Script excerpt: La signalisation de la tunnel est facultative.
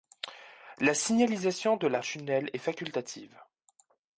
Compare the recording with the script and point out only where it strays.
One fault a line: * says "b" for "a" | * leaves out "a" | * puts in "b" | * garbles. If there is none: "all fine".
all fine